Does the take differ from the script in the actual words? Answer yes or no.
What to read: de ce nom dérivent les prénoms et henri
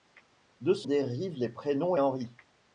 yes